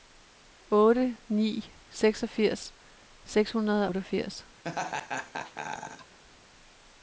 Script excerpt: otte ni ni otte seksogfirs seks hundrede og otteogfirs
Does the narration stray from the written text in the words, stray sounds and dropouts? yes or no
yes